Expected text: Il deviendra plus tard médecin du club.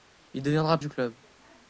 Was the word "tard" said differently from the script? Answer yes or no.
yes